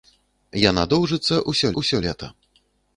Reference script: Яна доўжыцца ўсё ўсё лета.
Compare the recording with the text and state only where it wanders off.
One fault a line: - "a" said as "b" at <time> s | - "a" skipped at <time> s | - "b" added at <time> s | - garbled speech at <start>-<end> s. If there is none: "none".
none